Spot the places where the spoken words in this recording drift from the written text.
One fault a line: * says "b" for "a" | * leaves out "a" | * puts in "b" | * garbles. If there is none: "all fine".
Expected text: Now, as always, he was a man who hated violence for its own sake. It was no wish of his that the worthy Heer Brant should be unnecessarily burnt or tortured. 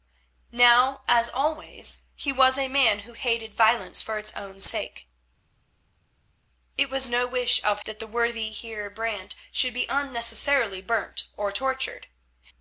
* leaves out "his"